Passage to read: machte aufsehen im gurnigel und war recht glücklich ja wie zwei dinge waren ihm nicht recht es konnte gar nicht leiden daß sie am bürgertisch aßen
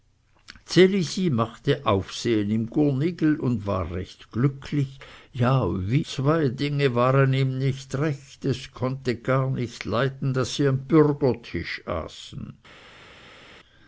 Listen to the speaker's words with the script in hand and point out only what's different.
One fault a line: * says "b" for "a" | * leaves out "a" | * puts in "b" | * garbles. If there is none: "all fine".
all fine